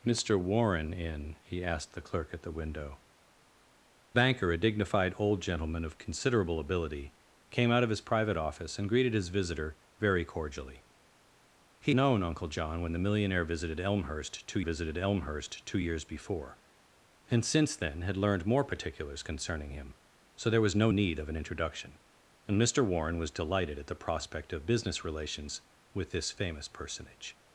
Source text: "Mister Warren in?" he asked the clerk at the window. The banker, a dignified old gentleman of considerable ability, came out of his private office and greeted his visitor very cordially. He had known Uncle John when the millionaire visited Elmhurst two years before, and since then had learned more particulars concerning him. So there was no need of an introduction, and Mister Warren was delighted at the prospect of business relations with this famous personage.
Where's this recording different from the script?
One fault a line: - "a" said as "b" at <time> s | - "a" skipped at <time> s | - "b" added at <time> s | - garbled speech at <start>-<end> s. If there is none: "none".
- "The" skipped at 3.0 s
- "had" skipped at 11.9 s
- "visited Elmhurst two" added at 14.6 s